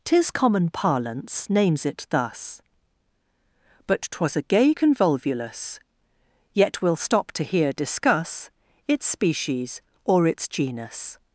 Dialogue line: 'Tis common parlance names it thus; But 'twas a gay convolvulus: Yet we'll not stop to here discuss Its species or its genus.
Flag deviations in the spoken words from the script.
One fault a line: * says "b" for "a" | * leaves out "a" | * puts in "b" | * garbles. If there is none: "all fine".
* leaves out "not"